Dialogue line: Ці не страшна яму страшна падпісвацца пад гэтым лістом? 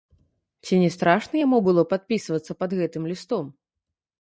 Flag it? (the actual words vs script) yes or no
yes